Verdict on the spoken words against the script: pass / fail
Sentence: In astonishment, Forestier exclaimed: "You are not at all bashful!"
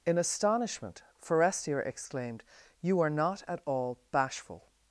pass